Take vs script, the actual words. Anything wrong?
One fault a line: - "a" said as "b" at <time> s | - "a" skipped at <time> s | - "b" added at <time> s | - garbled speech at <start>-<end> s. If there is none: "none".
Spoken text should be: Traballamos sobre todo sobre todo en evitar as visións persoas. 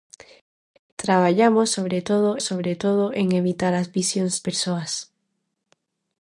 none